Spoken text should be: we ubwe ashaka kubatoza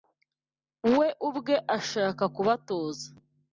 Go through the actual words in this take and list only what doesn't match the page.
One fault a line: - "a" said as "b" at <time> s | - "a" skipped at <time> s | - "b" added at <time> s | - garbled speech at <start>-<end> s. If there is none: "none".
none